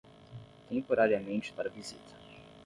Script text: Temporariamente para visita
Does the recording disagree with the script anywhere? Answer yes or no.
no